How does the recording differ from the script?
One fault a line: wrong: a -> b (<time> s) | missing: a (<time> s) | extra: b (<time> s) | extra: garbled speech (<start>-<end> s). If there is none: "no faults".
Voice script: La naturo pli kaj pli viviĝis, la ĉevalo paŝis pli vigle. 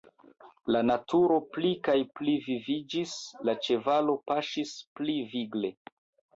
no faults